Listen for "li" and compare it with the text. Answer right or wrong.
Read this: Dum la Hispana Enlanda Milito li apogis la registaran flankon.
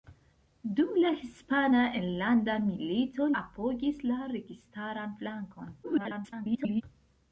wrong